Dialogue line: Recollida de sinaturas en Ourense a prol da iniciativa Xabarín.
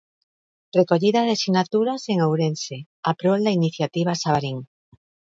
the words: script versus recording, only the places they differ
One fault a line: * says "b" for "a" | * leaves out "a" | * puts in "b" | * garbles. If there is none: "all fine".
all fine